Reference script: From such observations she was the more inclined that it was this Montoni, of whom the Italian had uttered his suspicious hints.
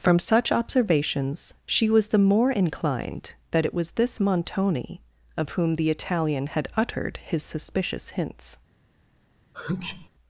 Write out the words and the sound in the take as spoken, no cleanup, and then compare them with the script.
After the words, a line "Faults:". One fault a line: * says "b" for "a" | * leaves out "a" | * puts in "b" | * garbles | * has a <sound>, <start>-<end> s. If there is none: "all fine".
From such observations she was the more inclined that it was this Montoni, of whom the Italian had uttered his suspicious hints.
Faults:
* has a sneeze, 9.5-10.1 s